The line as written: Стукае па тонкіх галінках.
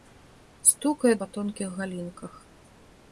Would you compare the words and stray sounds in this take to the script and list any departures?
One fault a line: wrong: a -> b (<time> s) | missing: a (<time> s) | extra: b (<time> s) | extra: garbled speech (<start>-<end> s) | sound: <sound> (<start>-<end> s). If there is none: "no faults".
no faults